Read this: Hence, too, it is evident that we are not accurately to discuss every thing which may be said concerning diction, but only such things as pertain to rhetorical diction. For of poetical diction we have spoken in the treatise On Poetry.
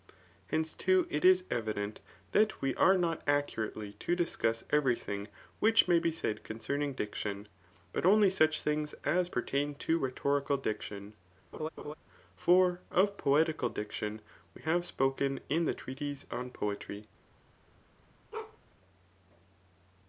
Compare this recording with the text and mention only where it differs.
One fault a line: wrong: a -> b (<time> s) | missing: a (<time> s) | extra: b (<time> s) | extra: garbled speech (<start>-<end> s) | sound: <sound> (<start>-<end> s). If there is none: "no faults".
sound: laugh (11.5-11.9 s)
sound: bark (18.3-18.6 s)